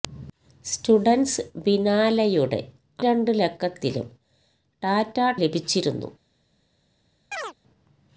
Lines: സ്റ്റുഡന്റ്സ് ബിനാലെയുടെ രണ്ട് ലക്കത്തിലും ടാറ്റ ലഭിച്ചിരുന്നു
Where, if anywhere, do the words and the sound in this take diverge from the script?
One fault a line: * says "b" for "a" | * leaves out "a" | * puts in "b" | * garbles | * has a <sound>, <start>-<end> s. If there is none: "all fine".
* has a chirp, 7.3-7.5 s